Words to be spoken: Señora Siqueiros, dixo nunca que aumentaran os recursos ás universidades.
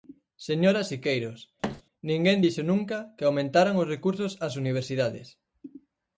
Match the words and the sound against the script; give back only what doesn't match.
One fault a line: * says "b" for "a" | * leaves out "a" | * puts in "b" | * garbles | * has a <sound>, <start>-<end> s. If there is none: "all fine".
* has a thud, 1.6-1.8 s
* puts in "ninguén"